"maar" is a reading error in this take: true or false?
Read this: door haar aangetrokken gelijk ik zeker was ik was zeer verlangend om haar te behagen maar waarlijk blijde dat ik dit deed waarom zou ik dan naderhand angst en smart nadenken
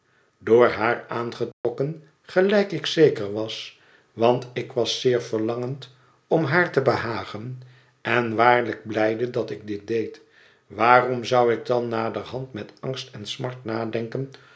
true